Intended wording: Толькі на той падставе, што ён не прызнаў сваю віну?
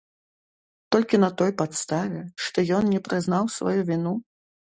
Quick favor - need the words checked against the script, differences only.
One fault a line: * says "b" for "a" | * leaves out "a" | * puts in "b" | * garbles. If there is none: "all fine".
all fine